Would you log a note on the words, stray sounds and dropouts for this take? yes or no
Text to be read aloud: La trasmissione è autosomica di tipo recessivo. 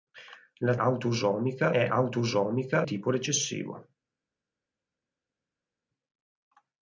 yes